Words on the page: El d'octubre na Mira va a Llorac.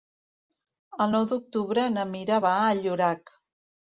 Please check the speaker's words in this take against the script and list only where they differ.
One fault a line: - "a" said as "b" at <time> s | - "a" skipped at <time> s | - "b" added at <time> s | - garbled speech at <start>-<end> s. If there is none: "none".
- "nou" added at 1.1 s